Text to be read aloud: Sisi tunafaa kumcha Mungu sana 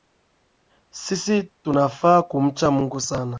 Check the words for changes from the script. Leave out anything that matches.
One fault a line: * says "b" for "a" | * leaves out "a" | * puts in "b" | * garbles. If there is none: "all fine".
all fine